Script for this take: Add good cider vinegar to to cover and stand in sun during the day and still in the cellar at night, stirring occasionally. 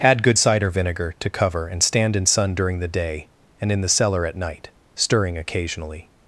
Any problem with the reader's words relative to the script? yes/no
yes